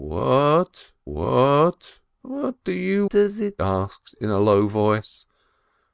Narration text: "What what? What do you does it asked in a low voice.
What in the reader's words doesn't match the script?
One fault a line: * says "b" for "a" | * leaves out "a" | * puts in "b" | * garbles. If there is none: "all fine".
all fine